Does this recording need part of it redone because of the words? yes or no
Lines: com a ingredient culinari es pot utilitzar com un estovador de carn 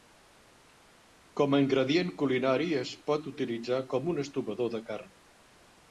no